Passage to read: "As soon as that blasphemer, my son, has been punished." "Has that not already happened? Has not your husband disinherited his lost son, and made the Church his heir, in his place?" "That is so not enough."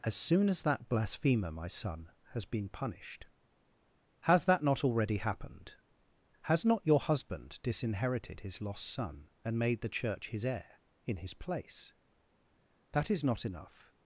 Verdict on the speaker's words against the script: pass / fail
fail